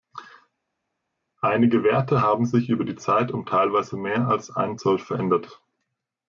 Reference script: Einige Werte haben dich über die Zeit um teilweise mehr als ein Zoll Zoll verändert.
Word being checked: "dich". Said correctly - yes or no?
no